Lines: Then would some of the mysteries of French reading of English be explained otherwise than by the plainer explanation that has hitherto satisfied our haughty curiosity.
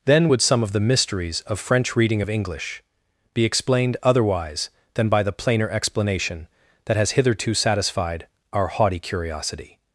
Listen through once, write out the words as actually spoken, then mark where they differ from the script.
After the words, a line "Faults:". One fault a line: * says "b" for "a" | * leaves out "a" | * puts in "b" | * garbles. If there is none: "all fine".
Then would some of the mysteries of French reading of English be explained otherwise than by the plainer explanation that has hitherto satisfied our haughty curiosity.
Faults:
all fine